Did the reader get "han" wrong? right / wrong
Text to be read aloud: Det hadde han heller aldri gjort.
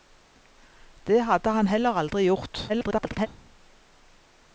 right